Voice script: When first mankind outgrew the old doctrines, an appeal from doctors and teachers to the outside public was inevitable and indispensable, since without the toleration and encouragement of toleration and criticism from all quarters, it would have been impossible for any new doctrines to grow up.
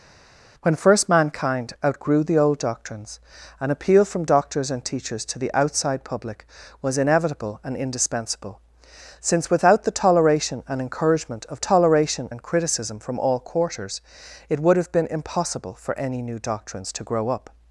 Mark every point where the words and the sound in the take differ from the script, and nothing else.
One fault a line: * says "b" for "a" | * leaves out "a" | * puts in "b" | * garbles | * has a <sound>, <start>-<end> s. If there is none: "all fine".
all fine